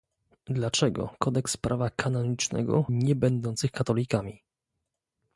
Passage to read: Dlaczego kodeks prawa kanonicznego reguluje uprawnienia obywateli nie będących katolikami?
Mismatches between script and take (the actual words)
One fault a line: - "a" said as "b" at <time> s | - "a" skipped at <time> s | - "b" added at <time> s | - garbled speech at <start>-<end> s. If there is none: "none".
- "reguluje uprawnienia obywateli" skipped at 2.9 s